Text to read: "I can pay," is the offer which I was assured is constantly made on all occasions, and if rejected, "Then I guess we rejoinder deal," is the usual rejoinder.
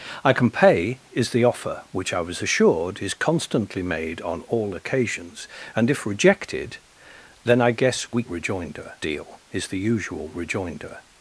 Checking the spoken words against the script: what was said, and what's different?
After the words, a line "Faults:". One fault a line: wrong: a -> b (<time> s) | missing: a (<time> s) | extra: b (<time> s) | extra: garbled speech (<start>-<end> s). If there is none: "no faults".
"I can pay," is the offer which I was assured is constantly made on all occasions, and if rejected, "Then I guess we rejoinder deal," is the usual rejoinder.
Faults:
no faults